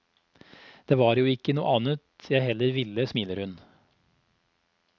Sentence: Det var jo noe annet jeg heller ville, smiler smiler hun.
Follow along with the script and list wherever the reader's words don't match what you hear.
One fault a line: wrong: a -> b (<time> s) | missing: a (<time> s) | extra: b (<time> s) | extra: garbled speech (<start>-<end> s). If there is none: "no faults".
extra: ikke (1.3 s)
missing: smiler (3.4 s)